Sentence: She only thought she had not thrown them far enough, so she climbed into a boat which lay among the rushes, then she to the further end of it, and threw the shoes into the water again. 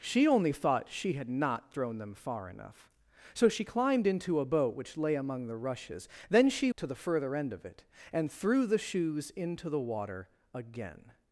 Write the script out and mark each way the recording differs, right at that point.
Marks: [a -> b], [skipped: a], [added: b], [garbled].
She only thought she had not thrown them far enough, so she climbed into a boat which lay among the rushes, then she to the further end of it, and threw the shoes into the water again.